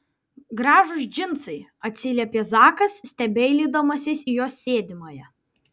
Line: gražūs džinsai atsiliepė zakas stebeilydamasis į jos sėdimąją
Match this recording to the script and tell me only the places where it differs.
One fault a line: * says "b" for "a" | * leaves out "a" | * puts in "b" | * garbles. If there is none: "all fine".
all fine